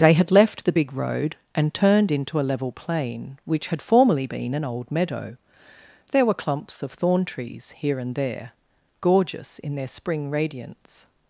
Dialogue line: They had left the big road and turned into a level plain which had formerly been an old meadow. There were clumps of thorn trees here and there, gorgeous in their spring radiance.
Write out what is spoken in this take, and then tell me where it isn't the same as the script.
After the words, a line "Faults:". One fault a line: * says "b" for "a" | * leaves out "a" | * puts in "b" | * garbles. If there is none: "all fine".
They had left the big road and turned into a level plain which had formerly been an old meadow. There were clumps of thorn trees here and there, gorgeous in their spring radiance.
Faults:
all fine